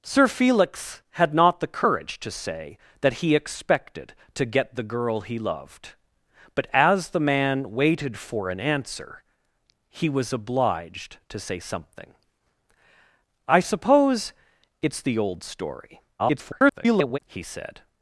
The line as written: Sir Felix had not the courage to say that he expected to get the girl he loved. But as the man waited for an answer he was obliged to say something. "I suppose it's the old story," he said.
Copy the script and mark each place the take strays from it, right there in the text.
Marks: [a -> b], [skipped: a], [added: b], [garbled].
Sir Felix had not the courage to say that he expected to get the girl he loved. But as the man waited for an answer he was obliged to say something. "I suppose it's the old story," [garbled] he said.